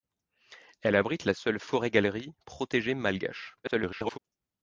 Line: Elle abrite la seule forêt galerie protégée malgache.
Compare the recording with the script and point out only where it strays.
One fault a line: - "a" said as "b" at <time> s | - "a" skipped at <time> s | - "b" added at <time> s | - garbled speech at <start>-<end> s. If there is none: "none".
- garbled speech at 3.6-4.2 s